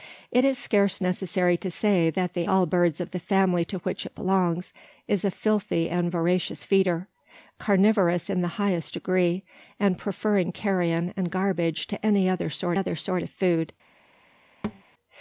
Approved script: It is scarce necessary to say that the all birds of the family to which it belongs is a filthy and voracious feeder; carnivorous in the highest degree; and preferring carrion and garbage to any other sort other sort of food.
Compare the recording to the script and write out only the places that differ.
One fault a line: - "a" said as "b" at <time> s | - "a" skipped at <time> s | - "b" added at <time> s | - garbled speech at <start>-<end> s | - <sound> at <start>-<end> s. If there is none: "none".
- thud at 14.6-14.8 s